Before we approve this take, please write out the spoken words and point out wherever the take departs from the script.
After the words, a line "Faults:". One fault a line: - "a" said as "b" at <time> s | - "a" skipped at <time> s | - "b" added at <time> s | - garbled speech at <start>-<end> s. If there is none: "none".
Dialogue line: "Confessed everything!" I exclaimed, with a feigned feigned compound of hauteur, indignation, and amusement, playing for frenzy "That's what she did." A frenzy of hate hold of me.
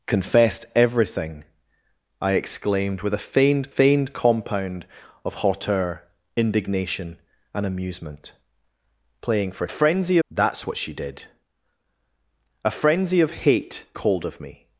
"Confessed everything!" I exclaimed, with a feigned feigned compound of hauteur, indignation, and amusement, playing for frenzy "That's what she did." A frenzy of hate hold of me.
Faults:
none